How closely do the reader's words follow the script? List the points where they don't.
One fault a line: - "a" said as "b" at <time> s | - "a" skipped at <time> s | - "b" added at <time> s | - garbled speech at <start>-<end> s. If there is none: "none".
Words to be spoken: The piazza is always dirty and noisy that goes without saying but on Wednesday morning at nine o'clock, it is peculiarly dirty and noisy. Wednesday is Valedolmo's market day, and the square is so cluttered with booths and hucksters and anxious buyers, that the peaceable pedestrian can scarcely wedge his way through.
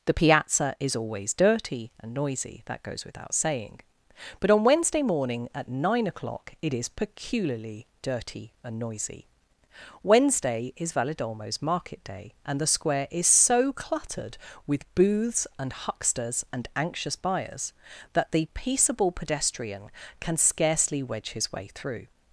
none